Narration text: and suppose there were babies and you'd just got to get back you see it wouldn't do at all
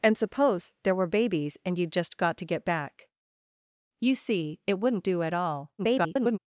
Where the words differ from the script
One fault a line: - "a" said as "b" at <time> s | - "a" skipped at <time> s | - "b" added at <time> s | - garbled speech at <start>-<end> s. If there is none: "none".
- garbled speech at 5.8-6.4 s